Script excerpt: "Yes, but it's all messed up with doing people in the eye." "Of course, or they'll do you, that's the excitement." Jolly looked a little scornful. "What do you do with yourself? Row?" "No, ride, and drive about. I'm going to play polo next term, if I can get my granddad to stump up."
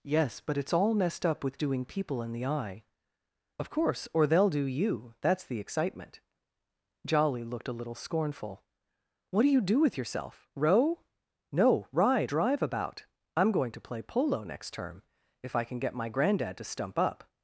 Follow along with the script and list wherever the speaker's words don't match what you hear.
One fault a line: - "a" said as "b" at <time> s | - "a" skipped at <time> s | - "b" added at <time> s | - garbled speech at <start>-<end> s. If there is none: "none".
- "and" skipped at 12.3 s